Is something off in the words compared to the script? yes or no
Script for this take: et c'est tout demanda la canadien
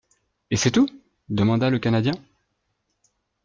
yes